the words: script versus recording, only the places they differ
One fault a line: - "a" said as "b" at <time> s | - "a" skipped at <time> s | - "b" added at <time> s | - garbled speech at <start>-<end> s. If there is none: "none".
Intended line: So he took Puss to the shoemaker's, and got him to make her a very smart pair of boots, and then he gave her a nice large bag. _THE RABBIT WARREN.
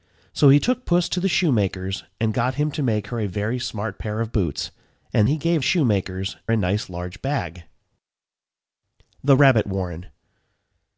- "then" skipped at 5.3 s
- "her" said as "shoemaker's" at 5.6 s